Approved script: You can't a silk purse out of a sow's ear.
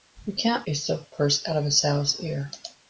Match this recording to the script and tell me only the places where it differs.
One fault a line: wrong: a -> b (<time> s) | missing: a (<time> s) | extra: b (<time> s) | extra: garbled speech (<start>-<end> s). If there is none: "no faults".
no faults